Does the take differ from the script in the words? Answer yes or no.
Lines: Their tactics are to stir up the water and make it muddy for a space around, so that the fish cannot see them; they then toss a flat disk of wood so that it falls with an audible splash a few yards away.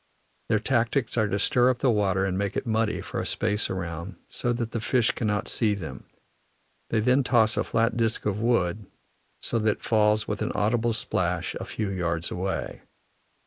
no